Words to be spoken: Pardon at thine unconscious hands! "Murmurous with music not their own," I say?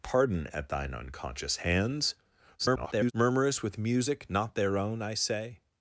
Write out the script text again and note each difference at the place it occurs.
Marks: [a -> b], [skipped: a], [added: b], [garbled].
Pardon at thine unconscious hands! [garbled] "Murmurous with music not their own," I say?